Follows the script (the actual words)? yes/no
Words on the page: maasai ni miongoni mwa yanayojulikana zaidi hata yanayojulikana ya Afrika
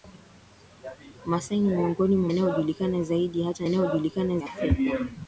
yes